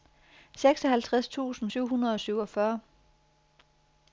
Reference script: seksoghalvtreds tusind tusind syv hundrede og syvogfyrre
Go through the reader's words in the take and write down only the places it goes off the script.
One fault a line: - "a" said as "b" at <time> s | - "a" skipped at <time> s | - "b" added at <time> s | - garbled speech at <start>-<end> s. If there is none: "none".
- "tusind" skipped at 1.7 s